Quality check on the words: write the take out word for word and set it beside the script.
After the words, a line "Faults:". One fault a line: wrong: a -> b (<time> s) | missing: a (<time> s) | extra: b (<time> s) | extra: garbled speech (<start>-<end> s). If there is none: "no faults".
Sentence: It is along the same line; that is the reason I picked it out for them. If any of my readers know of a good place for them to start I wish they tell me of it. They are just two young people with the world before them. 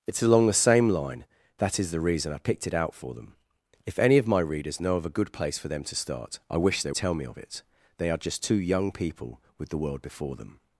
It is along the same line; that is the reason I picked it out for them. If any of my readers know of a good place for them to start I wish they tell me of it. They are just two young people with the world before them.
Faults:
no faults